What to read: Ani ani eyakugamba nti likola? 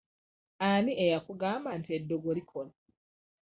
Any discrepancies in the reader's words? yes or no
yes